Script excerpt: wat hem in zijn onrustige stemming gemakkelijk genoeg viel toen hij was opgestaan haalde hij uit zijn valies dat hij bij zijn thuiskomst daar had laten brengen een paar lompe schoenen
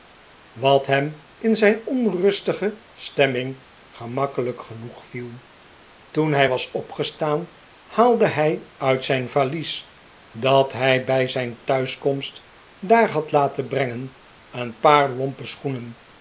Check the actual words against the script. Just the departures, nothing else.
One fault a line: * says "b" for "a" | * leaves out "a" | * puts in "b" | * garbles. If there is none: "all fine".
all fine